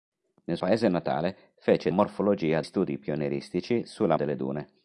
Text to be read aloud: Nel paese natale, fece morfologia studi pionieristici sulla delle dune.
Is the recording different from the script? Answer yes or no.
no